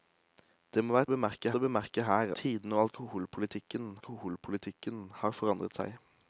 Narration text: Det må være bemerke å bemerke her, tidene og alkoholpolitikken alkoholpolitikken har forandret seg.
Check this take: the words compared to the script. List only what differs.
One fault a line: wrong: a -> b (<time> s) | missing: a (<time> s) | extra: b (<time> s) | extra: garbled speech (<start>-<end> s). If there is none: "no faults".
no faults